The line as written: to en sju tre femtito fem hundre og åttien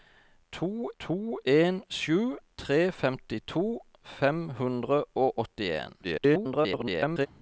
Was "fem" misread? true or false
false